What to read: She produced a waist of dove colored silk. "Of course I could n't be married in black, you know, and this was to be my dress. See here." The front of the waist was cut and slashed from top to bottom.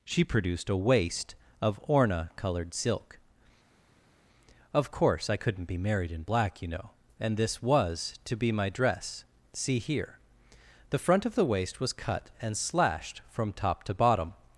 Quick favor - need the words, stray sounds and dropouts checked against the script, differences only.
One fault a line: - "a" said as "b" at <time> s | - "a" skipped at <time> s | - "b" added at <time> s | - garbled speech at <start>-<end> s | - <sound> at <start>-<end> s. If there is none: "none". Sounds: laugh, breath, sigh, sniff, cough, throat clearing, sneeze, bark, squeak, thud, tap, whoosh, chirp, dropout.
- "dove" said as "orna" at 1.8 s